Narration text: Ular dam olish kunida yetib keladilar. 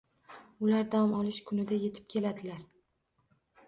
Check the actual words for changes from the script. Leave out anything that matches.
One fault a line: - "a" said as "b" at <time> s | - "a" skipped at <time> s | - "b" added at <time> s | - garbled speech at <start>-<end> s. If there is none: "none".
none